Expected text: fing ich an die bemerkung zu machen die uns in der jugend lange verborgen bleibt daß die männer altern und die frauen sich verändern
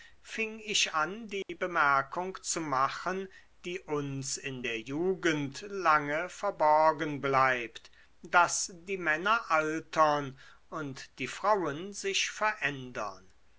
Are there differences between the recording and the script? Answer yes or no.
no